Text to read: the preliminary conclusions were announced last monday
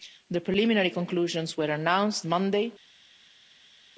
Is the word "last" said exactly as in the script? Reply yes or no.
no